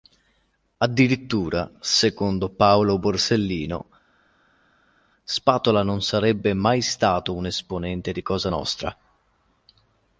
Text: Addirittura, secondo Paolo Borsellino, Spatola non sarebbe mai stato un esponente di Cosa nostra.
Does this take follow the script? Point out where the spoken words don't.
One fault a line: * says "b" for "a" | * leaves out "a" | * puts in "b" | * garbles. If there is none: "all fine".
all fine